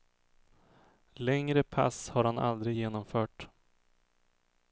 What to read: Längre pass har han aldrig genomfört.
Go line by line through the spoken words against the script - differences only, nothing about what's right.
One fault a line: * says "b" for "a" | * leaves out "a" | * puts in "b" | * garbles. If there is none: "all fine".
all fine